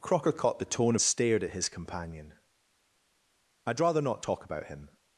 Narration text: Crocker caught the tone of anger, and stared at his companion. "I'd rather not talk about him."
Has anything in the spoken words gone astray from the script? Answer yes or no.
yes